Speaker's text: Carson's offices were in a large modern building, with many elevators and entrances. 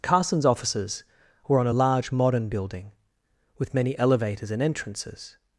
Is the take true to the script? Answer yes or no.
no